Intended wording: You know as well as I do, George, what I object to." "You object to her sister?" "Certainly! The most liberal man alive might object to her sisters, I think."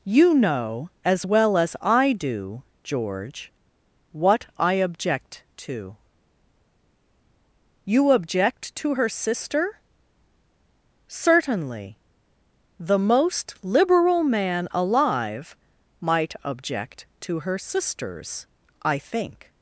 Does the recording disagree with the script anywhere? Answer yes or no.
no